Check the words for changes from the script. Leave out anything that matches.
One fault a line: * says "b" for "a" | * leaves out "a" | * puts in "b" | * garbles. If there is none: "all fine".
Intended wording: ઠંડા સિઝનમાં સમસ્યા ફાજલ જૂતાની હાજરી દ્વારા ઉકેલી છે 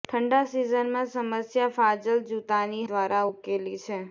* leaves out "હાજરી"